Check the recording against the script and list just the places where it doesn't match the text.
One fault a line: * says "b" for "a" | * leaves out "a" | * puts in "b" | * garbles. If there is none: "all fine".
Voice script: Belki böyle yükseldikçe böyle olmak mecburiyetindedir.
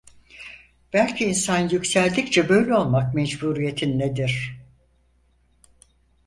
* says "insan" for "böyle"